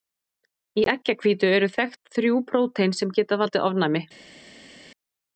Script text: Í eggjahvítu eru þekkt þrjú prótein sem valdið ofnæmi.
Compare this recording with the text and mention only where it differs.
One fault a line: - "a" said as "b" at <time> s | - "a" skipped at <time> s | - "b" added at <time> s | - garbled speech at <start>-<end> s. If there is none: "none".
- "geta" added at 3.2 s